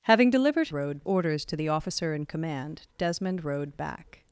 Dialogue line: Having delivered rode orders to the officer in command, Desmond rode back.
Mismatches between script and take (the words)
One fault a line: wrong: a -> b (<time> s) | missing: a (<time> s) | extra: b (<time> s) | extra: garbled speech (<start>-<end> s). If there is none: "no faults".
no faults